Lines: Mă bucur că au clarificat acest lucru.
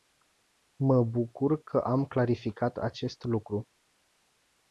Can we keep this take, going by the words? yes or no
no